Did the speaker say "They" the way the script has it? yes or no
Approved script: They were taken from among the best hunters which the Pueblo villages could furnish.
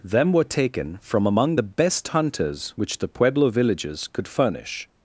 no